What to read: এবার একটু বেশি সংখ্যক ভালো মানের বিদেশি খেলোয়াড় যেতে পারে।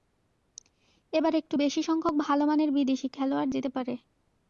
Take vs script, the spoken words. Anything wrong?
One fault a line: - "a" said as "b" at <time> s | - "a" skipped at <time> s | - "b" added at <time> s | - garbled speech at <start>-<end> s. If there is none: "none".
none